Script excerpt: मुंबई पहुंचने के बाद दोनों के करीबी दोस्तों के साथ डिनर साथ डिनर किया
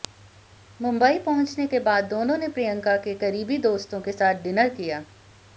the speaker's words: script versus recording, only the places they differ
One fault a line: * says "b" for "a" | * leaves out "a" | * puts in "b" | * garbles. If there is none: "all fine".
* puts in "ने प्रियंका"
* leaves out "साथ डिनर"